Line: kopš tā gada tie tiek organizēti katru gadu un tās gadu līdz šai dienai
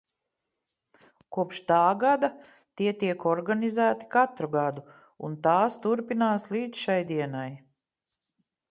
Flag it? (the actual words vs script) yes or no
yes